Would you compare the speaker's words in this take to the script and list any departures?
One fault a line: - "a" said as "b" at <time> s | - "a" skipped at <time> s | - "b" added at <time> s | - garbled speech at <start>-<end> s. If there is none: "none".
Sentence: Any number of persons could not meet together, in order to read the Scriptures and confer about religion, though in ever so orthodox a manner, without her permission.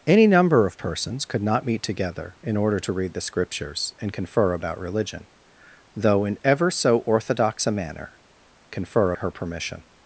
- "without" said as "confer" at 8.7 s